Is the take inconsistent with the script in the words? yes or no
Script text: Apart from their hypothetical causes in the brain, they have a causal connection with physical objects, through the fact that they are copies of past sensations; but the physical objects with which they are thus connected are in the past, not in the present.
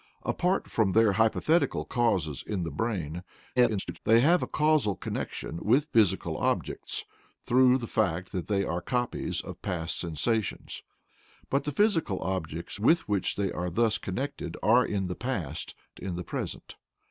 yes